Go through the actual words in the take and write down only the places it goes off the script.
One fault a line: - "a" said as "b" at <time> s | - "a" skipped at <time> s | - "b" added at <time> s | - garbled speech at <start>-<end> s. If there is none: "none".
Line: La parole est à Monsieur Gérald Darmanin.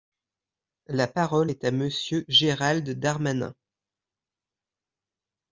none